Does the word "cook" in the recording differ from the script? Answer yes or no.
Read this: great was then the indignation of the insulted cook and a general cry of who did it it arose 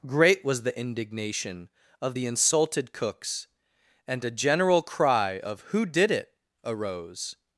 yes